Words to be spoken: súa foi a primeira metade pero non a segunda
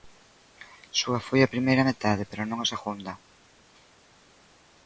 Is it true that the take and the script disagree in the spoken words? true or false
false